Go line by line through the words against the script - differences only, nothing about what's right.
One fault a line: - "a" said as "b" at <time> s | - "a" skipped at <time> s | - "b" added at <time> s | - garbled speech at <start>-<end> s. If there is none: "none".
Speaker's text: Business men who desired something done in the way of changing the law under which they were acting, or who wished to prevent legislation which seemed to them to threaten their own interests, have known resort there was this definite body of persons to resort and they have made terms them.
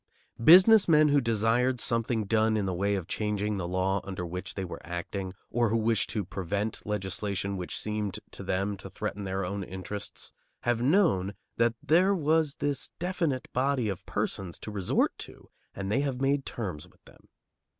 - "resort" said as "that" at 11.6 s
- "to" added at 15.2 s
- "with" added at 16.9 s